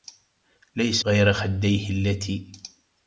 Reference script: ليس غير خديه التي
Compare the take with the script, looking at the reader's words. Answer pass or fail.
pass